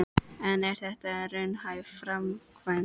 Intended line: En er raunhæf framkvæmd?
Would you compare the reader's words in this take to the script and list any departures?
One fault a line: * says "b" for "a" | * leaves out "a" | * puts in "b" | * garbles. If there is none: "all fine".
* puts in "þetta"